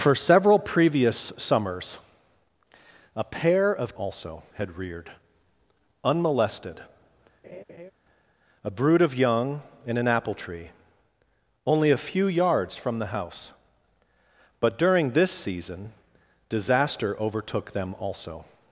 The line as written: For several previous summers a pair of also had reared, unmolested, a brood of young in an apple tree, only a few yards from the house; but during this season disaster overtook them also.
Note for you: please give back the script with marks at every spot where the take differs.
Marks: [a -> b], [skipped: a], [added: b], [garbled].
For several previous summers a pair of also had reared, unmolested, a brood of young in an apple tree, only a few yards from the house; but during this season disaster overtook them also.